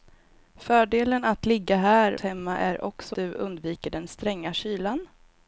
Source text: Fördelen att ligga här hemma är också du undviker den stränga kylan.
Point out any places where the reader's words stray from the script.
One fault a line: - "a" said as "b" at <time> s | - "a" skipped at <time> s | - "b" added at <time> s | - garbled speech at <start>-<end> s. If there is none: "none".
none